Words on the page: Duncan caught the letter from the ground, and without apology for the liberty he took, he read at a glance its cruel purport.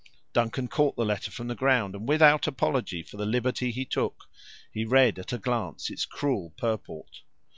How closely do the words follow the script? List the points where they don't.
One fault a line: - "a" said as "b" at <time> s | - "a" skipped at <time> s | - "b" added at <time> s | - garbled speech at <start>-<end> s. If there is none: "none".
none